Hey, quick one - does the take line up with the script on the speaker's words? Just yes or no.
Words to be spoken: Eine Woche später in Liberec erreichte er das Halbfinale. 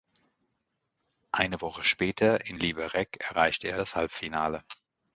yes